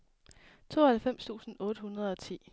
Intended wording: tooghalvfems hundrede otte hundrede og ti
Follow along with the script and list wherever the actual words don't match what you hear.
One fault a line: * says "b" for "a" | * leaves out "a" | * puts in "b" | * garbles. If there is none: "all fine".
* says "tusind" for "hundrede"